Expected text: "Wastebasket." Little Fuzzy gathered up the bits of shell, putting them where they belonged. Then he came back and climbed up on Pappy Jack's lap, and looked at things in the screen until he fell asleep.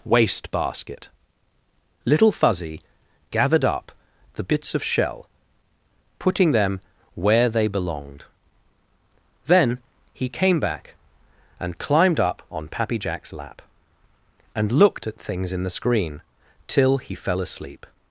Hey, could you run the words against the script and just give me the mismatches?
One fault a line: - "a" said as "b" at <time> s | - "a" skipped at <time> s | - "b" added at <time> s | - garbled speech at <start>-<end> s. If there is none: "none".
- "until" said as "till" at 16.7 s